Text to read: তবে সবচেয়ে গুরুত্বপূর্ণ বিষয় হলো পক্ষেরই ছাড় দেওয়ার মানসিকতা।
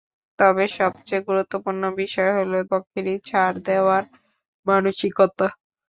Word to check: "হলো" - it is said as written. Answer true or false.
true